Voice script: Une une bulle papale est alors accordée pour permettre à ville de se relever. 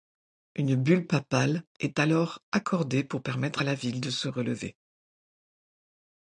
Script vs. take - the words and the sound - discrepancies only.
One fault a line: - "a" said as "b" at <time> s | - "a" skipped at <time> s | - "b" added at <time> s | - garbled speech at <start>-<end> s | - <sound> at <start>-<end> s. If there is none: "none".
- "une" skipped at 0.8 s
- "la" added at 3.6 s